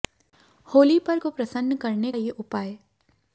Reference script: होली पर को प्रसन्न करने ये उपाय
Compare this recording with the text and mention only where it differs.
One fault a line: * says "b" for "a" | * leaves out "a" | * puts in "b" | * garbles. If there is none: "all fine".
all fine